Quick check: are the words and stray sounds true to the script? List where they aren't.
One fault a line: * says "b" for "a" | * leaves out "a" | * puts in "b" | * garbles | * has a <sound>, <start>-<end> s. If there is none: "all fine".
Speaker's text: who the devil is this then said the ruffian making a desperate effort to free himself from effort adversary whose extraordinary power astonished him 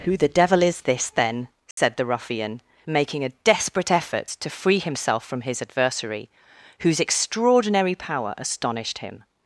* has a dropout, 1.7-1.8 s
* says "his" for "effort"